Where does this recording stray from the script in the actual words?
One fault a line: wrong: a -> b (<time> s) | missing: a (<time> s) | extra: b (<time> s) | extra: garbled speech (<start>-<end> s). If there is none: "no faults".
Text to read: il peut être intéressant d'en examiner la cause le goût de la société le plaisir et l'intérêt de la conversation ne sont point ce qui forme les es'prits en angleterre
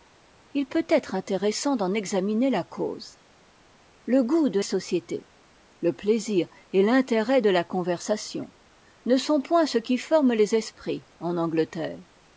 missing: la (4.6 s)